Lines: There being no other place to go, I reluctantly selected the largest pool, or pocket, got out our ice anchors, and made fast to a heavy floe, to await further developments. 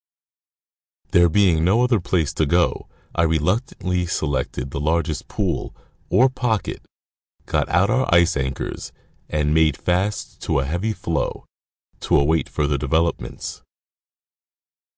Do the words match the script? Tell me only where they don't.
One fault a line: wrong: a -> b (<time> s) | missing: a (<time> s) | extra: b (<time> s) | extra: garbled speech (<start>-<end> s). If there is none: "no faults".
no faults